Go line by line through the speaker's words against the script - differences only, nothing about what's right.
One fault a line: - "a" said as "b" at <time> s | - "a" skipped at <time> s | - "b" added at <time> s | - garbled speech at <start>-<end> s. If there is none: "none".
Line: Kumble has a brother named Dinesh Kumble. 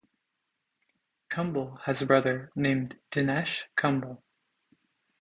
none